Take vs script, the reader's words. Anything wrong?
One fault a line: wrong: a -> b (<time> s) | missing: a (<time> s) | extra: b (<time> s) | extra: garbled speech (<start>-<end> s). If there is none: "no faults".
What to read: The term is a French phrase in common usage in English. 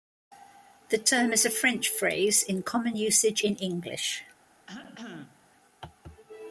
no faults